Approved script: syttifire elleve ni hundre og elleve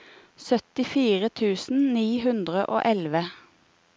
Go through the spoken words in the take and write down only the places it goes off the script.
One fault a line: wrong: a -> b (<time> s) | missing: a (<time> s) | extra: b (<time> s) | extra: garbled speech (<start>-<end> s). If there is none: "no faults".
wrong: elleve -> tusen (1.4 s)